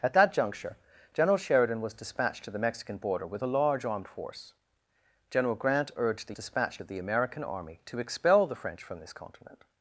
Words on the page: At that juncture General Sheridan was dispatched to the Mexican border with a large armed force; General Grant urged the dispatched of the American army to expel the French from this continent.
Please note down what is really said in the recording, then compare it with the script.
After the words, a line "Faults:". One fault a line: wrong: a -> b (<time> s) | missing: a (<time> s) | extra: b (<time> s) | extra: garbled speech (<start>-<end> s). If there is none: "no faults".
At that juncture General Sheridan was dispatched to the Mexican border with a large armed force; General Grant urged the dispatched of the American army to expel the French from this continent.
Faults:
no faults